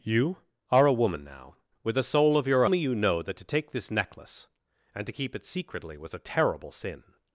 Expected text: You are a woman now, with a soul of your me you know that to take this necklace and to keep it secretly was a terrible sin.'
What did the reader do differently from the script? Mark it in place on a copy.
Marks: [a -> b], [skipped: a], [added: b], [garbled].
You are a woman now, with a soul of your me you know that to take this necklace and to keep it secretly was a terrible sin.'